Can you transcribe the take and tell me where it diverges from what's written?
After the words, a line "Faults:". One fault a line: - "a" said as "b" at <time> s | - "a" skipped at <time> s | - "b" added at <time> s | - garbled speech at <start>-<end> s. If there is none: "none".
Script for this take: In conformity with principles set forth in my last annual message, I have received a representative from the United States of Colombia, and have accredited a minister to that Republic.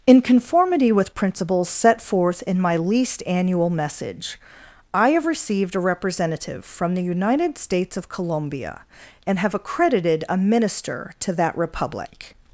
In conformity with principles set forth in my least annual message, I have received a representative from the United States of Colombia, and have accredited a minister to that Republic.
Faults:
- "last" said as "least" at 2.8 s